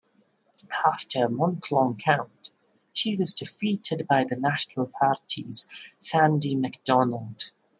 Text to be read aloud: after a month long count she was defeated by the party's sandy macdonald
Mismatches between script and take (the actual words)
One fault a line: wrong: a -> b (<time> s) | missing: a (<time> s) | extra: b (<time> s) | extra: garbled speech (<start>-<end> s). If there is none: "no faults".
extra: national (4.4 s)